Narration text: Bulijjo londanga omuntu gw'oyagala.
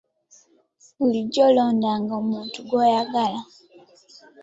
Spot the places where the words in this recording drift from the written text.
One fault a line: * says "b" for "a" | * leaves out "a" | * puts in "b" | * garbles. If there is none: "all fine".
all fine